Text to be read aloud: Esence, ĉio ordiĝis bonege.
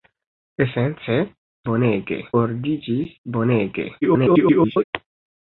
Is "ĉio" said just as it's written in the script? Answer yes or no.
no